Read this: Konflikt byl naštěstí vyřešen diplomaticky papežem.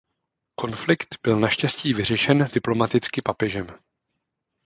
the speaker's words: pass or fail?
pass